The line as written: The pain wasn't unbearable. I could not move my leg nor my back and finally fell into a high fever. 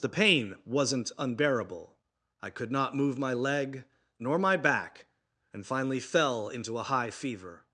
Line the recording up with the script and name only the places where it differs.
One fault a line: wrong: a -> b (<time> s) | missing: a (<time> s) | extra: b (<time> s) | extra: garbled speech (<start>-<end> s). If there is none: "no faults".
no faults